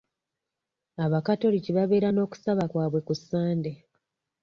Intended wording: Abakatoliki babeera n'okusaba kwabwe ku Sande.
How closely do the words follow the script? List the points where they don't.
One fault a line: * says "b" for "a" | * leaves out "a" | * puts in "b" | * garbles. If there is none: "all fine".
all fine